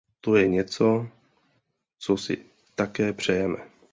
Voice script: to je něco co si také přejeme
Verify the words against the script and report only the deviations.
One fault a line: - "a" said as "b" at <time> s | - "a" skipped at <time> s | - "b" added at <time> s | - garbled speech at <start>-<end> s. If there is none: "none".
none